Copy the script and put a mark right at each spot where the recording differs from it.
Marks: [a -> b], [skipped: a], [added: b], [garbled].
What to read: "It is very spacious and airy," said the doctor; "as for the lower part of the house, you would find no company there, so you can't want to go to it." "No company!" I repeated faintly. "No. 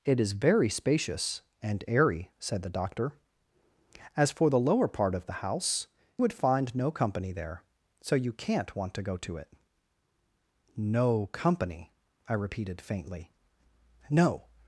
"It is very spacious and airy," said the doctor; "as for the lower part of the house, [skipped: you] would find no company there, so you can't want to go to it." "No company!" I repeated faintly. "No.